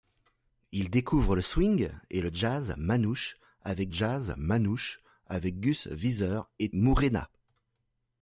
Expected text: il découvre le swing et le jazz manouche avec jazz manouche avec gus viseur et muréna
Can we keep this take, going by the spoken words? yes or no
yes